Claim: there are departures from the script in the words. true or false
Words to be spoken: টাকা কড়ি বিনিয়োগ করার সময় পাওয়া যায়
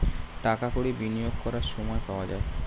false